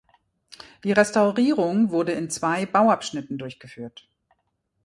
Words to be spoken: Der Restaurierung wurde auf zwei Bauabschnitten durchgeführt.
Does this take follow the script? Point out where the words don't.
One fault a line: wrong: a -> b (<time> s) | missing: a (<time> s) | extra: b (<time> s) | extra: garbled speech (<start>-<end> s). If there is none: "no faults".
wrong: Der -> Die (0.8 s)
wrong: auf -> in (2.1 s)